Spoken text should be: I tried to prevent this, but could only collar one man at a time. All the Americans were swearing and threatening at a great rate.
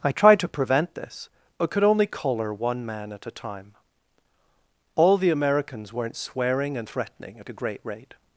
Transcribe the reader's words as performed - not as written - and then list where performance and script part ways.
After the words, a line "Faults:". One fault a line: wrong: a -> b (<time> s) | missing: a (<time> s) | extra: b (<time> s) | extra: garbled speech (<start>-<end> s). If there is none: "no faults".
I tried to prevent this, but could only collar one man at a time. All the Americans weren't swearing and threatening at a great rate.
Faults:
wrong: were -> weren't (5.9 s)